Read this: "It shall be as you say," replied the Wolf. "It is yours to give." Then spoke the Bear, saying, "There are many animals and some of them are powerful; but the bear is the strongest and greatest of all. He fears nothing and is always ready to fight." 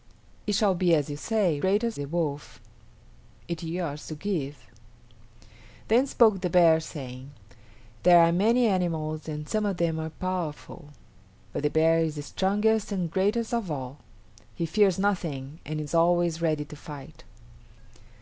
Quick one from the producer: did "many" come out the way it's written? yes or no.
yes